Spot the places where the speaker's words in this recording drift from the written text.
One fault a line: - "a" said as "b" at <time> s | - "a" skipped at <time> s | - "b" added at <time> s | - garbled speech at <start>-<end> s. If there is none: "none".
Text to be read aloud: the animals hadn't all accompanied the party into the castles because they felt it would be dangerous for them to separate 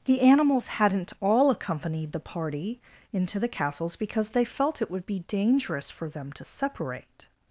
none